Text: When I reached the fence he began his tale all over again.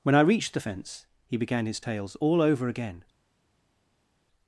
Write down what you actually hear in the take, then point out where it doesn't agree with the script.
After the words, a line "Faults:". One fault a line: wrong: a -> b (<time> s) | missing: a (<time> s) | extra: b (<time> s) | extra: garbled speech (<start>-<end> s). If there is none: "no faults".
When I reached the fence he began his tales all over again.
Faults:
wrong: tale -> tales (1.8 s)